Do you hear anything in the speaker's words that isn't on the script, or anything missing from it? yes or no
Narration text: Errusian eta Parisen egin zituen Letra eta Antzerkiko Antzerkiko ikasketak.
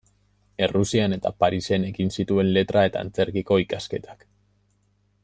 yes